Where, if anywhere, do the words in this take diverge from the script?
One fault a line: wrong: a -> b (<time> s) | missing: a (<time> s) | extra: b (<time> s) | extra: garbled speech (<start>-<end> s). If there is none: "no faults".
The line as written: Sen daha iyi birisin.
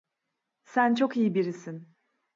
wrong: daha -> çok (0.9 s)